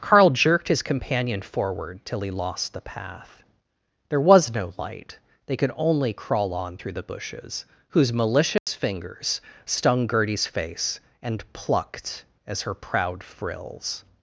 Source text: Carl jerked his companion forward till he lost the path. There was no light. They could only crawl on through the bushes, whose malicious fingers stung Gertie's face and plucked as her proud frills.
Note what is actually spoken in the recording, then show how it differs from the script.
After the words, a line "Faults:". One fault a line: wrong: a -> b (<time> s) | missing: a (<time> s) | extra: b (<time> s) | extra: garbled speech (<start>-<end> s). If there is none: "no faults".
Carl jerked his companion forward till he lost the path. There was no light. They could only crawl on through the bushes, whose malicious fingers stung Gertie's face and plucked as her proud frills.
Faults:
no faults